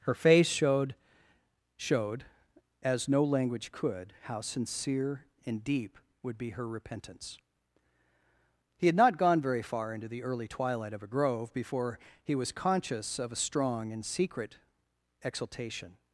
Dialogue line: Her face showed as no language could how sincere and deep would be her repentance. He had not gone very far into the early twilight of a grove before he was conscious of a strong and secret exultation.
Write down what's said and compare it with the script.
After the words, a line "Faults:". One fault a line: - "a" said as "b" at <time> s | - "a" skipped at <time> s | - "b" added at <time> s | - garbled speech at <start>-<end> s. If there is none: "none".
Her face showed showed as no language could how sincere and deep would be her repentance. He had not gone very far into the early twilight of a grove before he was conscious of a strong and secret exultation.
Faults:
- "showed" added at 1.8 s